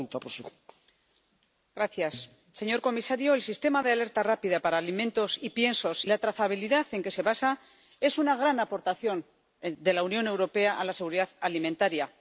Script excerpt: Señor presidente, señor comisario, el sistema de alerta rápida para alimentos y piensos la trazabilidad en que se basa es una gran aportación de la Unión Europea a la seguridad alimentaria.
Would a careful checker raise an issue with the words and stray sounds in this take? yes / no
no